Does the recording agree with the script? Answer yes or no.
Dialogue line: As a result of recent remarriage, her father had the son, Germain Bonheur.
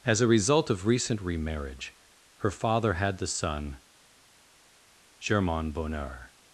yes